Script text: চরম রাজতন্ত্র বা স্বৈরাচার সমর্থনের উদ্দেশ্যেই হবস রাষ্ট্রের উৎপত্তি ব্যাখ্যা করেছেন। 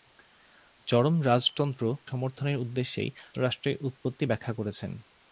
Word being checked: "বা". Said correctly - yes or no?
no